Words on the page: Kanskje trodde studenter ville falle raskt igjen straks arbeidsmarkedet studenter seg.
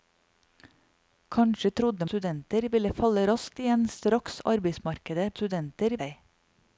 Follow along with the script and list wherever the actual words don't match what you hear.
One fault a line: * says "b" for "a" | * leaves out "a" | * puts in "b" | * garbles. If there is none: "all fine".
all fine